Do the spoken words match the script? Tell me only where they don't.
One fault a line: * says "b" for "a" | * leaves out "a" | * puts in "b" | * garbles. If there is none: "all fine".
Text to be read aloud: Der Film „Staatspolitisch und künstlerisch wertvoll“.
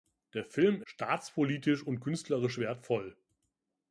all fine